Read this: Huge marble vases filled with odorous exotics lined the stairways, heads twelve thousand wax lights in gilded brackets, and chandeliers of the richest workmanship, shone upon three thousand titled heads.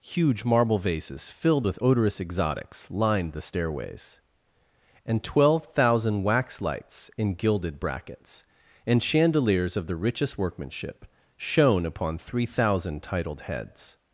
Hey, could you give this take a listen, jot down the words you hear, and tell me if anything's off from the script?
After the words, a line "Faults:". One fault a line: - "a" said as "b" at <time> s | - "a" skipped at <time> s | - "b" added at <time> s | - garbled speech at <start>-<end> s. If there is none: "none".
Huge marble vases filled with odorous exotics lined the stairways, and twelve thousand wax lights in gilded brackets, and chandeliers of the richest workmanship, shone upon three thousand titled heads.
Faults:
- "heads" said as "and" at 5.1 s